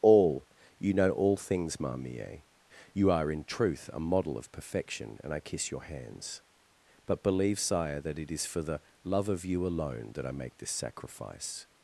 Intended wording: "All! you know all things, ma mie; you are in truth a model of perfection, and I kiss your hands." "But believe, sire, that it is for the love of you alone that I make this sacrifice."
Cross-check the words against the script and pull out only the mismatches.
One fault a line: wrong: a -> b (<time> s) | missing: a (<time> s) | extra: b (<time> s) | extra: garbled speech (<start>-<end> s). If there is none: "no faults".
no faults